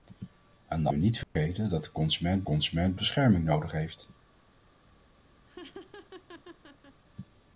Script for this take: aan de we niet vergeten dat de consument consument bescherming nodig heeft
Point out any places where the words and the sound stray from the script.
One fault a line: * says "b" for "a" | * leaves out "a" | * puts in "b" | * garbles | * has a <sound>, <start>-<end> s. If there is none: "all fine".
* has a dropout, 1.2-1.4 s
* has a laugh, 5.5-7.0 s